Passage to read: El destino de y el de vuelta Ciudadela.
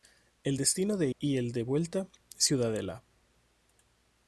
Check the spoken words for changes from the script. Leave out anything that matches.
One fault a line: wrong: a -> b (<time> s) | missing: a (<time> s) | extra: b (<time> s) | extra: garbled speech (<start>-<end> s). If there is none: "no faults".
no faults